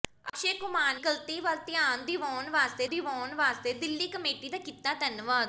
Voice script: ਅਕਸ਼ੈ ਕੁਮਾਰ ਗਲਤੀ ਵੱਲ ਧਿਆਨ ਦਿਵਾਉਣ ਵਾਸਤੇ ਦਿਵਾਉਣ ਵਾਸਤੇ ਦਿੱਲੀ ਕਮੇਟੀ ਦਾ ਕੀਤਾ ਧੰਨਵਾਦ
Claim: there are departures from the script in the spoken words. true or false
false